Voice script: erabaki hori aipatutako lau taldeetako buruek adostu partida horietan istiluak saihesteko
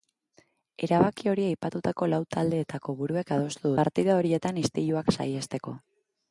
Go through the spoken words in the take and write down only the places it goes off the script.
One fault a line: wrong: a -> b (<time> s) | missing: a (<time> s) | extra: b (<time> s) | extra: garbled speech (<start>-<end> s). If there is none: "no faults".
no faults